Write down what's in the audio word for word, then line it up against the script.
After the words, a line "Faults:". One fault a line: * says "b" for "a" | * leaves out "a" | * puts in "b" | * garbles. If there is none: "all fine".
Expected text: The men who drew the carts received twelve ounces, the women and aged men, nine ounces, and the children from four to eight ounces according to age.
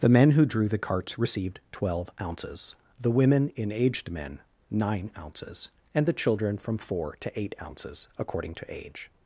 The men who drew the carts received twelve ounces, the women in aged men, nine ounces, and the children from four to eight ounces according to age.
Faults:
* says "in" for "and"